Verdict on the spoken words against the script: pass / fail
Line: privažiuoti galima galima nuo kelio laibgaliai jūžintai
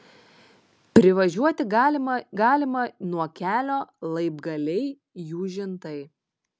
pass